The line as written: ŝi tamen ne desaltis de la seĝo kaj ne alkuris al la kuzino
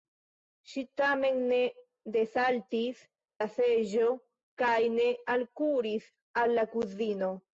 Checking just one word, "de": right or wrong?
wrong